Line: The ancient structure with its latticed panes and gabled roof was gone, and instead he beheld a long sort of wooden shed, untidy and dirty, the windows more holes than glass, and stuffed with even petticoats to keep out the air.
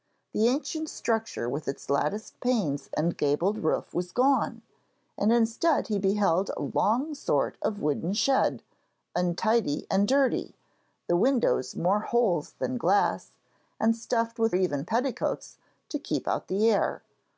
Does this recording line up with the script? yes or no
yes